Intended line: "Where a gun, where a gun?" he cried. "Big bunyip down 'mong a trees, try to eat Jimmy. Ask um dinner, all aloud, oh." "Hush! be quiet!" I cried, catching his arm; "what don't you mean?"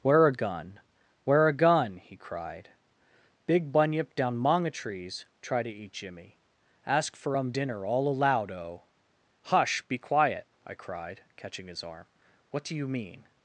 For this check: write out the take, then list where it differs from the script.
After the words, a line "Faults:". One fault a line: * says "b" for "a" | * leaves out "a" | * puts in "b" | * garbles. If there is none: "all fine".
"Where a gun, where a gun?" he cried. "Big bunyip down 'mong a trees, try to eat Jimmy. Ask for um dinner, all aloud, oh." "Hush! be quiet!" I cried, catching his arm; "what do you mean?"
Faults:
* puts in "for"
* says "do" for "don't"